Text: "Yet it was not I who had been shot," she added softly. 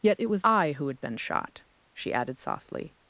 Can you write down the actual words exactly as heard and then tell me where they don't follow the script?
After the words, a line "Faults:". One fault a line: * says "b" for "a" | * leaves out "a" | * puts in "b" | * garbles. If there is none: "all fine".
"Yet it was I who had been shot," she added softly.
Faults:
* leaves out "not"